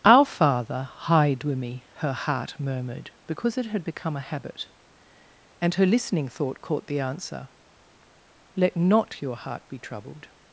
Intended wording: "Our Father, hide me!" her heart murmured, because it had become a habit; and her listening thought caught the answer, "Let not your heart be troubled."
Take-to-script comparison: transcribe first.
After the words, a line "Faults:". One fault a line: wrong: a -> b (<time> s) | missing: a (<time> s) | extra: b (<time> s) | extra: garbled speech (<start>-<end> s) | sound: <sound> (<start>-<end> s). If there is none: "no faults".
"Our Father, hide with me!" her heart murmured, because it had become a habit; and her listening thought caught the answer, "Let not your heart be troubled."
Faults:
extra: with (1.4 s)